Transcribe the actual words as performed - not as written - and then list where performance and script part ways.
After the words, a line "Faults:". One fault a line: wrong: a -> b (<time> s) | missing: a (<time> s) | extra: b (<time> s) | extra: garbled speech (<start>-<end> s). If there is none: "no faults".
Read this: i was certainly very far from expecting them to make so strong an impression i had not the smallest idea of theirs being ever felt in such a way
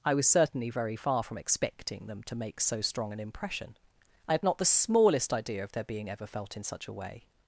i was certainly very far from expecting them to make so strong an impression i had not the smallest idea of their being ever felt in such a way
Faults:
wrong: theirs -> their (5.7 s)